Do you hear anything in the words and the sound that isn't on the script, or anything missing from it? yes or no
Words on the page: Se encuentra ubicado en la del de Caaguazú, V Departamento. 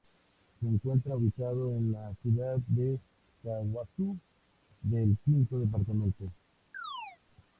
yes